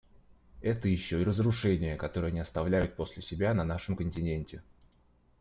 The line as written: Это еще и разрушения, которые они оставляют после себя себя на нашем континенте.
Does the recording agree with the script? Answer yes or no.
no